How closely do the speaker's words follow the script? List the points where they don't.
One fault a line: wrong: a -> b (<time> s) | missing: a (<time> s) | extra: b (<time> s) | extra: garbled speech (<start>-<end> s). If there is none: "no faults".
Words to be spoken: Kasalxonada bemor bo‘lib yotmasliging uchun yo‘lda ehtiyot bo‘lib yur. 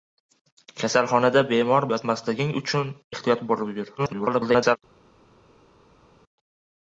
missing: bo‘lib (1.9 s)
missing: yo‘lda (2.9 s)
extra: garbled speech (4.0-4.8 s)